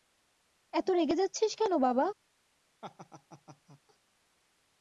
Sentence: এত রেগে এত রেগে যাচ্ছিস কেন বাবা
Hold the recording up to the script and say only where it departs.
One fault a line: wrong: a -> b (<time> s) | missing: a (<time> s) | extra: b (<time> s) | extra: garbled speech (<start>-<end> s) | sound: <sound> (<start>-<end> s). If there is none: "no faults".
missing: এত রেগে (1.1 s)
sound: laugh (2.8-3.8 s)